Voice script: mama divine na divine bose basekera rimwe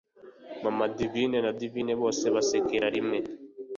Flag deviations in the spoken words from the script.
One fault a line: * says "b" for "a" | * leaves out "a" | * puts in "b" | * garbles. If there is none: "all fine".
all fine